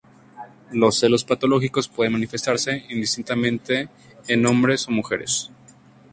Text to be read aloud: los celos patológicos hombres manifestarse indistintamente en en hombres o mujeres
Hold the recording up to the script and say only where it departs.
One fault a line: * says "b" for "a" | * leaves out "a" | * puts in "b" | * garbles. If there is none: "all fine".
* says "pueden" for "hombres"
* leaves out "en"